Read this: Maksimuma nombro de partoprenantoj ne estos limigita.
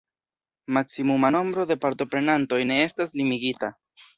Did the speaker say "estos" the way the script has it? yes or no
no